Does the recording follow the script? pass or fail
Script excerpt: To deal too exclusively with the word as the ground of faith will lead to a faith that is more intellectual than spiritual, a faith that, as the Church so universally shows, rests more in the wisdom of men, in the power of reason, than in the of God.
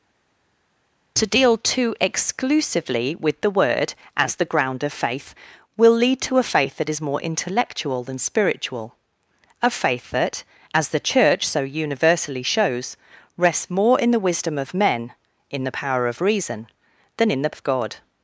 pass